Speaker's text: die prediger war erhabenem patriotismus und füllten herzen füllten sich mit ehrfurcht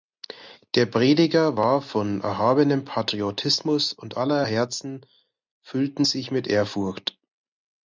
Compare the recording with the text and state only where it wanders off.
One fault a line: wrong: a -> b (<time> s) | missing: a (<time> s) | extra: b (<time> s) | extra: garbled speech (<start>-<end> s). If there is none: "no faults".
wrong: die -> der (0.7 s)
extra: von (1.8 s)
wrong: füllten -> aller (4.2 s)